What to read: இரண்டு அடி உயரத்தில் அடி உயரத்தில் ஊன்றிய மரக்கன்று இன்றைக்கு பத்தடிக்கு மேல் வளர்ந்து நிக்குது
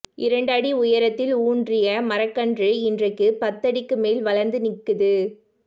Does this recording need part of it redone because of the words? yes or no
yes